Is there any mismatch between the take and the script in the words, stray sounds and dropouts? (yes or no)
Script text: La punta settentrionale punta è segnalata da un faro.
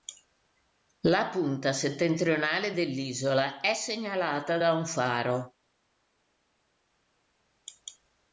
yes